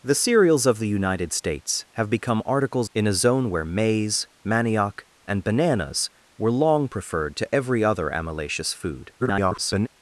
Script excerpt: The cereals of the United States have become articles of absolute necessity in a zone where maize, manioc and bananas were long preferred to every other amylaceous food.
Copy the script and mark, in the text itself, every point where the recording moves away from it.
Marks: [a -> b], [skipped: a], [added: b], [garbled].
The cereals of the United States have become articles [skipped: of absolute necessity] in a zone where maize, manioc and bananas were long preferred to every other amylaceous food. [garbled]